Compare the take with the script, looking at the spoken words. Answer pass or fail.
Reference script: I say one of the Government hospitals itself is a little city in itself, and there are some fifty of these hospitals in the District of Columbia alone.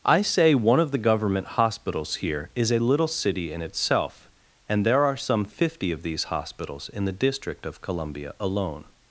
fail